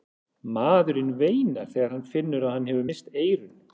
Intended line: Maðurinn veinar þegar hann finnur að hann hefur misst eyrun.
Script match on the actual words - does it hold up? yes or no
yes